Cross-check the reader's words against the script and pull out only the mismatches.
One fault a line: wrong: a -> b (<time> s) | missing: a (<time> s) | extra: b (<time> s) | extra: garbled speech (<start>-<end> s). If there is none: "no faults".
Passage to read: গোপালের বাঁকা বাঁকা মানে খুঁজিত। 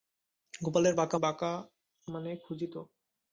no faults